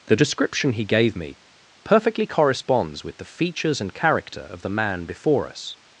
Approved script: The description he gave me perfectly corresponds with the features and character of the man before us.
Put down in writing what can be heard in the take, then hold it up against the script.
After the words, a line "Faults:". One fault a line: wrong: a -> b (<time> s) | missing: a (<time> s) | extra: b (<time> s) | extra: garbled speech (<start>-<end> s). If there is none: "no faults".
The description he gave me perfectly corresponds with the features and character of the man before us.
Faults:
no faults